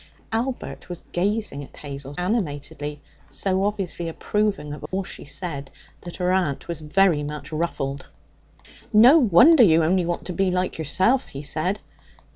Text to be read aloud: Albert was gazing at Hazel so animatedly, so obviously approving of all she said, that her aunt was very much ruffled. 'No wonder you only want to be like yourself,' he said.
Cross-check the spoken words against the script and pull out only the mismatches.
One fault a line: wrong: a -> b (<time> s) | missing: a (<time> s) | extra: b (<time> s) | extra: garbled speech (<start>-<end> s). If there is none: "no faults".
missing: so (2.1 s)